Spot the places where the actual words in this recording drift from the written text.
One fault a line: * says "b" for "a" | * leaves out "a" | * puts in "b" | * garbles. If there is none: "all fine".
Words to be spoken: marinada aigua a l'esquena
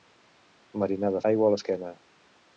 all fine